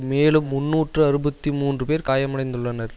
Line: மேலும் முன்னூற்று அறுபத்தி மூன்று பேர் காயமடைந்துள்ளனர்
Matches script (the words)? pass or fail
pass